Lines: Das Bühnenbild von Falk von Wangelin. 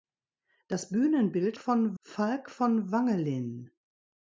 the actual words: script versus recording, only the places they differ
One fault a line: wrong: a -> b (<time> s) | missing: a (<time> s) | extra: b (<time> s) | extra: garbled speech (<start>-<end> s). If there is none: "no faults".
no faults